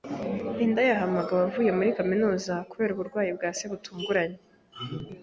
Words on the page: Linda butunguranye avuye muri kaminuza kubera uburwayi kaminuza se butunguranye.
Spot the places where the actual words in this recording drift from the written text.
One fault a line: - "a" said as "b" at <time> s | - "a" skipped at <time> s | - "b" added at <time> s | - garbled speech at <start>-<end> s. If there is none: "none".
- "butunguranye" said as "yahamagawe" at 0.9 s
- "kaminuza" said as "bwa" at 3.4 s